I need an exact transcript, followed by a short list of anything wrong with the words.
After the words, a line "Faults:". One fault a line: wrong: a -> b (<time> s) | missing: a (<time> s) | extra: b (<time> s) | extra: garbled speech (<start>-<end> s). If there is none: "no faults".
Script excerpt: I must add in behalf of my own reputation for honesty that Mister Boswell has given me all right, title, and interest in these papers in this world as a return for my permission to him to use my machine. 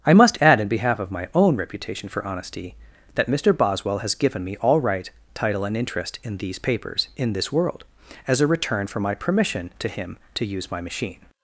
I must add in behalf of my own reputation for honesty that Mister Boswell has given me all right, title, and interest in these papers in this world as a return for my permission to him to use my machine.
Faults:
no faults